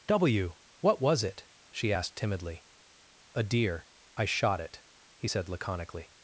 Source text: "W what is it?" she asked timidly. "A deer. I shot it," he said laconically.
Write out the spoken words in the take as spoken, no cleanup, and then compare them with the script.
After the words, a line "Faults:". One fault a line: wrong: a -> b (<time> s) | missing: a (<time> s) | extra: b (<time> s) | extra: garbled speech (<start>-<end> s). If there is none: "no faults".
"W what was it?" she asked timidly. "A deer. I shot it," he said laconically.
Faults:
wrong: is -> was (1.0 s)